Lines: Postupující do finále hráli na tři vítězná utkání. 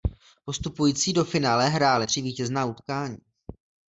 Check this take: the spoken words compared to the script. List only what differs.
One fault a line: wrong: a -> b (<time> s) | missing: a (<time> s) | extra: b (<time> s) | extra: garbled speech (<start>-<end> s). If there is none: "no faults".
missing: na (2.1 s)